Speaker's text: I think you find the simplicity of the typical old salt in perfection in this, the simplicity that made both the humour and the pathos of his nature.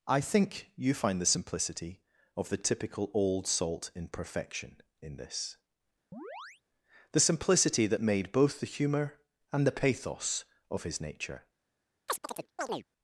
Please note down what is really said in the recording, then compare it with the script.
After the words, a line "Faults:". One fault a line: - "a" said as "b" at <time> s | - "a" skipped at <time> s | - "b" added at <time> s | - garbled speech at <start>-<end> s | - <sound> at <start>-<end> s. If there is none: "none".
I think you find the simplicity of the typical old salt in perfection in this, the simplicity that made both the humour and the pathos of his nature.
Faults:
- chirp at 6.1-6.6 s
- chirp at 12.1-12.9 s